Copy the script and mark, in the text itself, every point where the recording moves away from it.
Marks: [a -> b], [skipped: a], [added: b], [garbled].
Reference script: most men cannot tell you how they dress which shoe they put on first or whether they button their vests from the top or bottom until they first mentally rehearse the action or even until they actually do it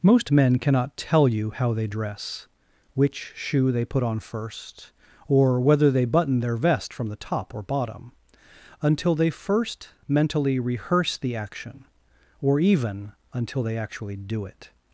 most men cannot tell you how they dress which shoe they put on first or whether they button their [vests -> vest] from the top or bottom until they first mentally rehearse the action or even until they actually do it